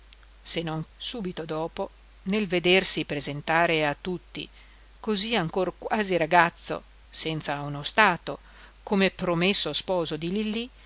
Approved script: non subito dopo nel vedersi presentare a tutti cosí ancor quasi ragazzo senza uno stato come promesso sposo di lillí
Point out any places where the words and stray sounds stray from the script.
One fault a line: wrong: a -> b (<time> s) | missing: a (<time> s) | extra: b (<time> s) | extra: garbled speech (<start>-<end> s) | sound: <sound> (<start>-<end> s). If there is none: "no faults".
no faults